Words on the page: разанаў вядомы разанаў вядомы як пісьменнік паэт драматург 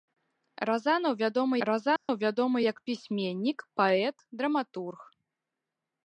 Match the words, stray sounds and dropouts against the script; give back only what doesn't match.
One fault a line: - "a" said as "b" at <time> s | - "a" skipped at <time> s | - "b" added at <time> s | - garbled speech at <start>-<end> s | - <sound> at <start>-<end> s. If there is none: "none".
- dropout at 2.0-2.1 s